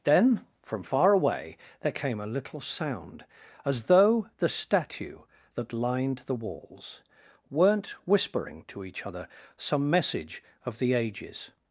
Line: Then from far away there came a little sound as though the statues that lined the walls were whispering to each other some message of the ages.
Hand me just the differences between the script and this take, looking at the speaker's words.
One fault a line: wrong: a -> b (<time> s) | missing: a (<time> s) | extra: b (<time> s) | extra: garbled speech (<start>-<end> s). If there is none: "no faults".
wrong: statues -> statue (4.5 s)
wrong: were -> weren't (7.5 s)